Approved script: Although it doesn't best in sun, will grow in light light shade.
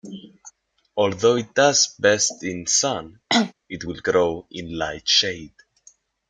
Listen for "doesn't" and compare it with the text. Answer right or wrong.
wrong